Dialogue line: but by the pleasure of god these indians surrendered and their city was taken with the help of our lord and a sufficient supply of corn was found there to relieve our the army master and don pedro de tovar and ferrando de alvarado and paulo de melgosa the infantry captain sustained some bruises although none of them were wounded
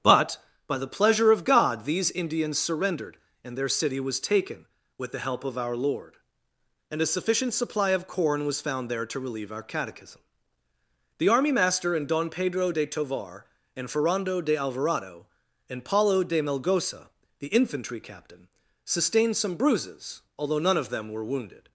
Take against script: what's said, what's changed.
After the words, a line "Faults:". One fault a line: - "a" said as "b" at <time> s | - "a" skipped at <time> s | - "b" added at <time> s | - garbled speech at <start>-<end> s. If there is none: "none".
but by the pleasure of god these indians surrendered and their city was taken with the help of our lord and a sufficient supply of corn was found there to relieve our catechism the army master and don pedro de tovar and ferrando de alvarado and paulo de melgosa the infantry captain sustained some bruises although none of them were wounded
Faults:
- "catechism" added at 9.6 s